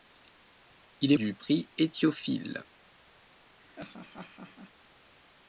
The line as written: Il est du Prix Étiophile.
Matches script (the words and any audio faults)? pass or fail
fail